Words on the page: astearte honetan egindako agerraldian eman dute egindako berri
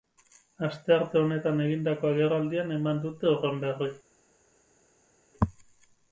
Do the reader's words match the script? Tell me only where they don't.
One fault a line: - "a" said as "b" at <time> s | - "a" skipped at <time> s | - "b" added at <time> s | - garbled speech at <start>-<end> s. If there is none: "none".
- "egindako" said as "horren" at 3.4 s